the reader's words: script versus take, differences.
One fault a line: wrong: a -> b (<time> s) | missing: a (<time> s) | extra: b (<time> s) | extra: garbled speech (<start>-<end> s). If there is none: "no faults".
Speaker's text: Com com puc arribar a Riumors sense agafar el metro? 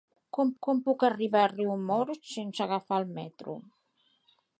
no faults